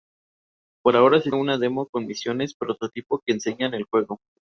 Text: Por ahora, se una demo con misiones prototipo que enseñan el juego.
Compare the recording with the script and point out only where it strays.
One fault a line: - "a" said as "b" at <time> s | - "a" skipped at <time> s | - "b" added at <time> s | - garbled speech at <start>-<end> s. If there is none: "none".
none